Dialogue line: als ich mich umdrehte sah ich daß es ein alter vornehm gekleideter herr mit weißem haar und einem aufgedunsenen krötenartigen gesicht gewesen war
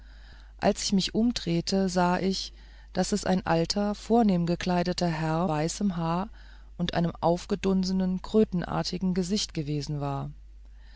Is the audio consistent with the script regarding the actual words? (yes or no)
no